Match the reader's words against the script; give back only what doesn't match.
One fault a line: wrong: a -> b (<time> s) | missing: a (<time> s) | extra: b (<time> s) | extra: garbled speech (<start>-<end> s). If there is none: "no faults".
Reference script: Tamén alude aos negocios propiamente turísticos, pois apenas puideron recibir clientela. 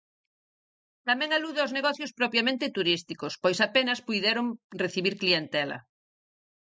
no faults